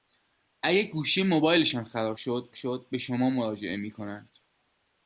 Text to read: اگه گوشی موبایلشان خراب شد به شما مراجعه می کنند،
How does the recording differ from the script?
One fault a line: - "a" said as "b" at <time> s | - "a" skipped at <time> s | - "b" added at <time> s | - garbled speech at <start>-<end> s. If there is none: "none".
- "شد" added at 2.5 s